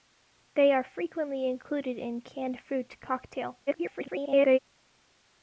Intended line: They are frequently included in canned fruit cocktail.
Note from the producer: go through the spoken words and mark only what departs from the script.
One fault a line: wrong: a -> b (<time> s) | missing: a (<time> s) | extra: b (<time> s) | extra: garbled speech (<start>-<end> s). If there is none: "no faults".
extra: garbled speech (3.7-4.6 s)